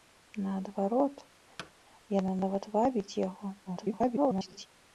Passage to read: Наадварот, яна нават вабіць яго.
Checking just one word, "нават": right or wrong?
right